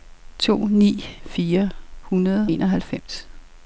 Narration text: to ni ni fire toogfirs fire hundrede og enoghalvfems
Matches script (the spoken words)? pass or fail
fail